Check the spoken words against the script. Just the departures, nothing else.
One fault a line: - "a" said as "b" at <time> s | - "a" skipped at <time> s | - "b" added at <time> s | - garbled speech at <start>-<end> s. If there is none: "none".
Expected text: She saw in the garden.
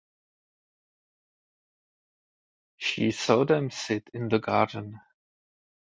- "them sit" added at 3.5 s